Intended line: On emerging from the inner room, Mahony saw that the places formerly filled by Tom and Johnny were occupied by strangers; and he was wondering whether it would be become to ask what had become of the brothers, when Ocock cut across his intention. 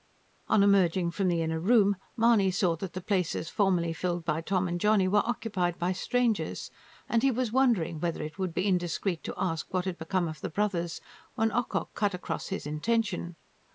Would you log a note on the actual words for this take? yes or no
yes